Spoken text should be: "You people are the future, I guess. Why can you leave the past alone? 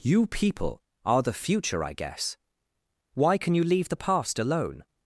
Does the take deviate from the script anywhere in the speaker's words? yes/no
no